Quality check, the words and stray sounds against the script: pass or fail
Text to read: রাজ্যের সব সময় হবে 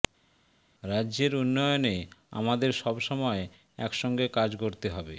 fail